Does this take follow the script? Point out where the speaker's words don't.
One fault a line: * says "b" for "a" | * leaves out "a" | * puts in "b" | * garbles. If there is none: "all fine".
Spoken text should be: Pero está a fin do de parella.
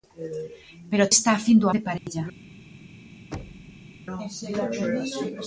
all fine